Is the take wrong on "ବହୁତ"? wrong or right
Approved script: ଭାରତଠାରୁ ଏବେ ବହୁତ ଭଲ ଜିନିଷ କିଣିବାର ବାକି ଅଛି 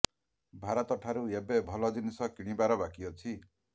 wrong